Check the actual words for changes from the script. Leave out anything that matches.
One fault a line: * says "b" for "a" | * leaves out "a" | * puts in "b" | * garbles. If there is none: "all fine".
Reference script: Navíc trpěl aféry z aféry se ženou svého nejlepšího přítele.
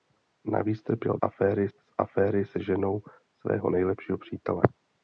all fine